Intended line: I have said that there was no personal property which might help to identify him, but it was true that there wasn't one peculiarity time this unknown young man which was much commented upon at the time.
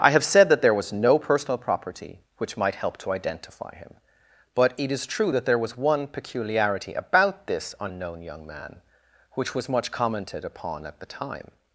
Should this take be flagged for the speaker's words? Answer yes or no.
yes